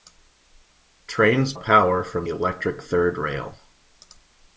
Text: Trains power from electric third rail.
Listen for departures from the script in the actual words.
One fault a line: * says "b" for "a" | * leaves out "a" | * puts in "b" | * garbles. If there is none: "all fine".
all fine